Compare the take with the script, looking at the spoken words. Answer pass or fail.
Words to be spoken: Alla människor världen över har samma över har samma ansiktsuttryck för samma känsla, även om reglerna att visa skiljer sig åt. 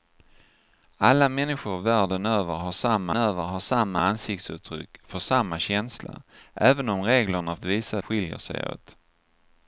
pass